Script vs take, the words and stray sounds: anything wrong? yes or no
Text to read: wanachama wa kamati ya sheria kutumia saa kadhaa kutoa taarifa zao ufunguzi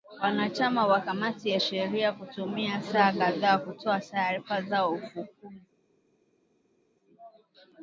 no